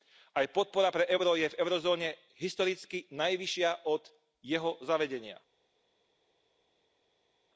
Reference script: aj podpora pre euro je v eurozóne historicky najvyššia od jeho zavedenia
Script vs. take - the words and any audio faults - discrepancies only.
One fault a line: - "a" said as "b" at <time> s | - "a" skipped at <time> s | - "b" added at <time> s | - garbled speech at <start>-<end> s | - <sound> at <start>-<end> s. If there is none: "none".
none